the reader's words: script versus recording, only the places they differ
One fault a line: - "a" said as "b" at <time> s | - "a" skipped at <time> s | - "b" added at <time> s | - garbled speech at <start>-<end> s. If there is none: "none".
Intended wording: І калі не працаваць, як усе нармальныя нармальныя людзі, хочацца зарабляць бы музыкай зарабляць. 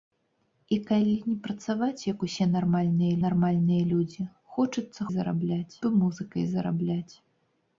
none